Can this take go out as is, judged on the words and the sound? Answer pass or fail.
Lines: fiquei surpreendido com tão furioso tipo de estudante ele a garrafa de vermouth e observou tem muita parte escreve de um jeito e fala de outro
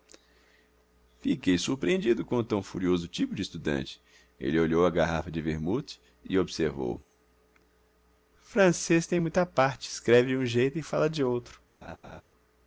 fail